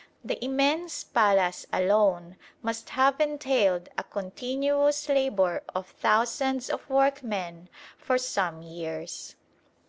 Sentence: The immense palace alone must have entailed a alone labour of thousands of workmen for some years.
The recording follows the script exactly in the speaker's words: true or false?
false